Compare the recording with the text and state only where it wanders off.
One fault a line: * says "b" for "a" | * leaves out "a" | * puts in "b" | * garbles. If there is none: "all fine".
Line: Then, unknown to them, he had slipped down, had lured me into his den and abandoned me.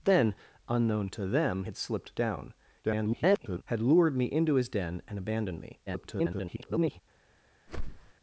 * leaves out "he"
* garbles
* garbles